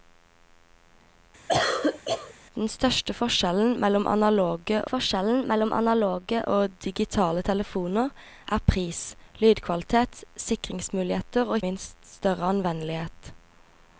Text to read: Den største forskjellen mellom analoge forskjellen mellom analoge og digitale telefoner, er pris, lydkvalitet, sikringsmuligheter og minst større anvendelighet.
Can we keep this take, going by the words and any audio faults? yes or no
no